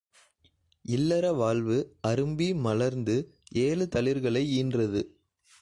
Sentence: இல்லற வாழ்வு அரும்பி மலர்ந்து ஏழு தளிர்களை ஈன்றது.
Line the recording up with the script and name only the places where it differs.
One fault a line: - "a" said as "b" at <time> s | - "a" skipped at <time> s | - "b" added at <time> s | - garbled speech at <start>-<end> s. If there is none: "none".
none